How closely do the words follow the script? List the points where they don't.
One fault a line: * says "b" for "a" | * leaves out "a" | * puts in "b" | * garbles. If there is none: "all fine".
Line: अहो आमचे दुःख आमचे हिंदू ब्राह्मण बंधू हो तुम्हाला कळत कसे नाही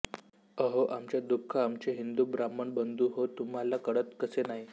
all fine